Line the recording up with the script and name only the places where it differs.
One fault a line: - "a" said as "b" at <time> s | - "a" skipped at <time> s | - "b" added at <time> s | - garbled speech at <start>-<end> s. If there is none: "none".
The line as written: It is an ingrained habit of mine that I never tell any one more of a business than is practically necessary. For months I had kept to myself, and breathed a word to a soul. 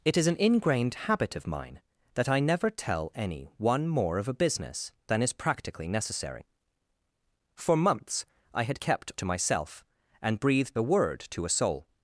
none